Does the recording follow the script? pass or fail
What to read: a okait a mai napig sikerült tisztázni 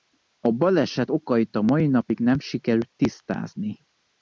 fail